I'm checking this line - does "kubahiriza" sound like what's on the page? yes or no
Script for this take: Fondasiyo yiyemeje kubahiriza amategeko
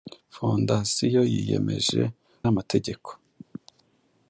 no